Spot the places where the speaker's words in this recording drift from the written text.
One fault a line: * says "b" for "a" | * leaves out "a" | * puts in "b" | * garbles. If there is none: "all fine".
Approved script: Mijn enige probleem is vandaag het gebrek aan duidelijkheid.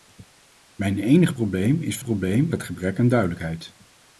* says "probleem" for "vandaag"